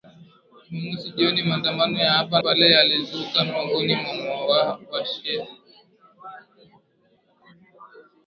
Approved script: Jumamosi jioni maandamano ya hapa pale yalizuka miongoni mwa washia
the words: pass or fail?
pass